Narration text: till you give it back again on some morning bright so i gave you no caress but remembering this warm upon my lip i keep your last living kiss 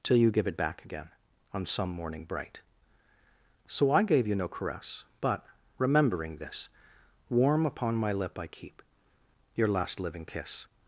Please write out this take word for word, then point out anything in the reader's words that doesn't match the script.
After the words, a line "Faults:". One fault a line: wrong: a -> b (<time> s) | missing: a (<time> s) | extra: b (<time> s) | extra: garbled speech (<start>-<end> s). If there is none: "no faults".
till you give it back again on some morning bright so i gave you no caress but remembering this warm upon my lip i keep your last living kiss
Faults:
no faults